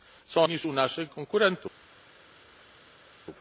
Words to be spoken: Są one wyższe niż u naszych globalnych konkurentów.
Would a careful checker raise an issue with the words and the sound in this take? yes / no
yes